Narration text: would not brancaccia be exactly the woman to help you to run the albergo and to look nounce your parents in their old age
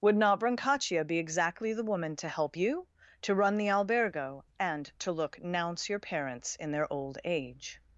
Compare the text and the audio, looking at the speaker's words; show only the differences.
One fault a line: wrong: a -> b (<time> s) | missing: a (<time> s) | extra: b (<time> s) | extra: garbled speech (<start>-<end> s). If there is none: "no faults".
no faults